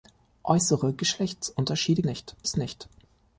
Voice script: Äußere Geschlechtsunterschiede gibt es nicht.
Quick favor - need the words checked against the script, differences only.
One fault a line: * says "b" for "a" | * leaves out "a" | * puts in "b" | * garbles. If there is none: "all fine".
* says "nicht" for "gibt"